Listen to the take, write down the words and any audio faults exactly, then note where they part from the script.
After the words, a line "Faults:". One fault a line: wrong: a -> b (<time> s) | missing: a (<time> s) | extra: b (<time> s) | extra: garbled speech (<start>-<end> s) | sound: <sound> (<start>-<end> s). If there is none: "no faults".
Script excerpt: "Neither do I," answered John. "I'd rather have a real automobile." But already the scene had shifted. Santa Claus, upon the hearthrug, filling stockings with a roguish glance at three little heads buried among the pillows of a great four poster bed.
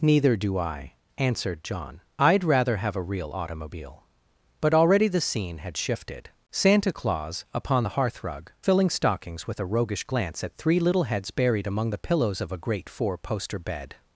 "Neither do I," answered John. "I'd rather have a real automobile." But already the scene had shifted. Santa Claus, upon the hearthrug, filling stockings with a roguish glance at three little heads buried among the pillows of a great four poster bed.
Faults:
no faults